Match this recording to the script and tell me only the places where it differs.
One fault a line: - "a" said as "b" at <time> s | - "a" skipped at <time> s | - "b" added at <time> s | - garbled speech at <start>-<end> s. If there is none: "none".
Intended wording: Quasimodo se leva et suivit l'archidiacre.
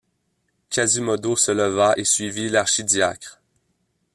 none